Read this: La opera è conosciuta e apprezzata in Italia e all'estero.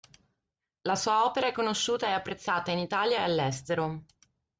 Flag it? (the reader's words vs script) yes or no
yes